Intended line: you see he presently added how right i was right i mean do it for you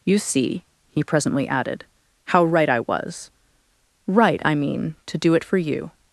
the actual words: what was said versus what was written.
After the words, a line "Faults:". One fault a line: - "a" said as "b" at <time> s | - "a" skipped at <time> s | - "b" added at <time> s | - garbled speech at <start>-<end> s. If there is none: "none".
you see he presently added how right i was right i mean to do it for you
Faults:
- "to" added at 5.1 s